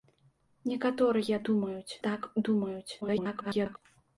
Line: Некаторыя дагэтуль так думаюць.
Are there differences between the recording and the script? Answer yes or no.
yes